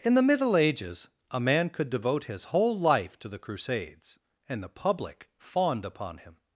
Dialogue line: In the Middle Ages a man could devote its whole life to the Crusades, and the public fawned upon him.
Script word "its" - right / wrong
wrong